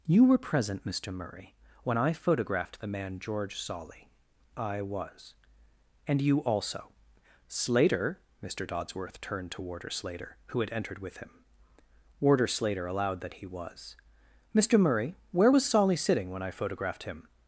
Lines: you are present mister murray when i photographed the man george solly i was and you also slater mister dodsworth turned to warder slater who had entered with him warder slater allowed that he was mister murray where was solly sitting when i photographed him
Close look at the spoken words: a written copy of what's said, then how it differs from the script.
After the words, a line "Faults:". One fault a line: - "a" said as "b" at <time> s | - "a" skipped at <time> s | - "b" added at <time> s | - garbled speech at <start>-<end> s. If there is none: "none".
you were present mister murray when i photographed the man george solly i was and you also slater mister dodsworth turned to warder slater who had entered with him warder slater allowed that he was mister murray where was solly sitting when i photographed him
Faults:
- "are" said as "were" at 0.2 s